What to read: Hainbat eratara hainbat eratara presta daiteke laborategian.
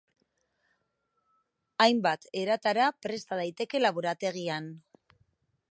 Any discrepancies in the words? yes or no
yes